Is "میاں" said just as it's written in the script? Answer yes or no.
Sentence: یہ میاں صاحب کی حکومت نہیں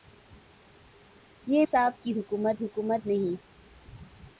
no